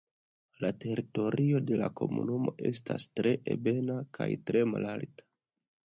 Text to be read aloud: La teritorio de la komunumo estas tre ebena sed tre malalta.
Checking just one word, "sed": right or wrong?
wrong